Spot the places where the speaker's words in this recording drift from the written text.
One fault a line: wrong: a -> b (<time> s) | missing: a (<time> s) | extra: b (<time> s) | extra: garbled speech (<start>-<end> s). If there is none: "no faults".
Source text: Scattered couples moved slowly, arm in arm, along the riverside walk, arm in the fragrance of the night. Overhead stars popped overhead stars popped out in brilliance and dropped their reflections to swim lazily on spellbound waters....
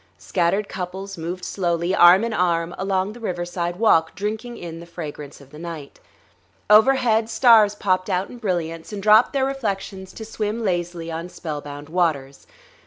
wrong: arm -> drinking (4.2 s)
missing: overhead stars popped (8.1 s)